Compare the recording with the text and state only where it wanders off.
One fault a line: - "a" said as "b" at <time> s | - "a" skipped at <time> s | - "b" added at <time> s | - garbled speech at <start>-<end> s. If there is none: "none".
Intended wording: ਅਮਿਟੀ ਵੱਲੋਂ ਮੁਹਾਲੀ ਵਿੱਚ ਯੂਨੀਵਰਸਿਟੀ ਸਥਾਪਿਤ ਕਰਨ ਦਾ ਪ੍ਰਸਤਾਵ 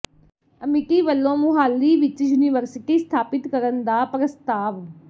none